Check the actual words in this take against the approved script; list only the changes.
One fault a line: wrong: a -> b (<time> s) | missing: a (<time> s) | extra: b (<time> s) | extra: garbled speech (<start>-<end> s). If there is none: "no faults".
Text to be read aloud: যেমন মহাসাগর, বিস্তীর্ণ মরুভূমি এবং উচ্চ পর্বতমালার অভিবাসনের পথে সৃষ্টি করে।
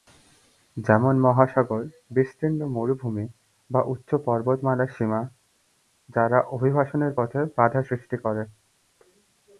wrong: এবং -> বা (3.7 s)
extra: সীমা যারা (4.9 s)
extra: বাধা (7.6 s)